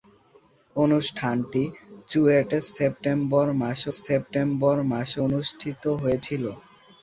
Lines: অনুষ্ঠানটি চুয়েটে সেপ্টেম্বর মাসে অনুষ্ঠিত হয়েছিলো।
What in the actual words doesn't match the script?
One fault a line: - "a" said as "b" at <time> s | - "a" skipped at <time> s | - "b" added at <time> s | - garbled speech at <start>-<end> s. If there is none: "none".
- "সেপ্টেম্বর মাসে" added at 4.0 s